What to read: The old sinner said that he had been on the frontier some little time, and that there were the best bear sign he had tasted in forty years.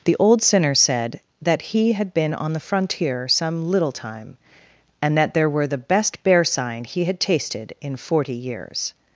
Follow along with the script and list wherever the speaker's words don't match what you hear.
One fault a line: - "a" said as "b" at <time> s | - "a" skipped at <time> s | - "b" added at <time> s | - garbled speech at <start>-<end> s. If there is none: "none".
none